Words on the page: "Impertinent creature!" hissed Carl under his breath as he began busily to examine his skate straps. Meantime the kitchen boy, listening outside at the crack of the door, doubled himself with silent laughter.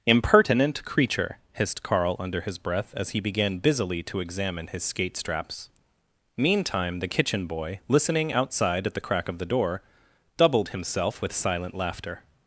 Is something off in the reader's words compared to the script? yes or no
no